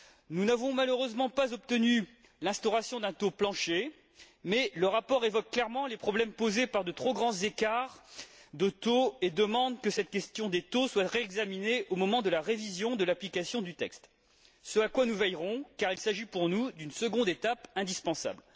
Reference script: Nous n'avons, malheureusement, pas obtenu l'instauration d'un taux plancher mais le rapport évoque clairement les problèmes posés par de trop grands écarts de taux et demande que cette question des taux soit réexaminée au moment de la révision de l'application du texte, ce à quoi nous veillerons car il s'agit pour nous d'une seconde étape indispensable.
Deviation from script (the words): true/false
false